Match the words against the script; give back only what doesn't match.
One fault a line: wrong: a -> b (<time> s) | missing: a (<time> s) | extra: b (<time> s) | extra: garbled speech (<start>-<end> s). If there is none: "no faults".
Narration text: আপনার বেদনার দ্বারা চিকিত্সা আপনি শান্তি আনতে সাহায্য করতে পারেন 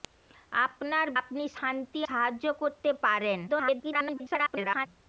missing: বেদনার দ্বারা চিকিত্সা (1.1 s)
missing: আনতে (2.0 s)
extra: garbled speech (3.5-4.9 s)